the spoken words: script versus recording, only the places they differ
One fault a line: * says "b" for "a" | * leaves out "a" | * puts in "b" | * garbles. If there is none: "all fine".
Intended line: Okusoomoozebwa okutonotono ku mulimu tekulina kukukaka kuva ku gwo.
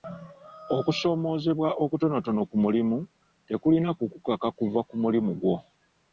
* puts in "mulimu"